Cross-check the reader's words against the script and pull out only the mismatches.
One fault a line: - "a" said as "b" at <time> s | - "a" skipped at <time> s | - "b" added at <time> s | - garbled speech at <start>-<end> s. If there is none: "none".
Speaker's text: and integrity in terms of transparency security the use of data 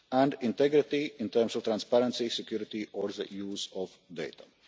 - "or" added at 2.9 s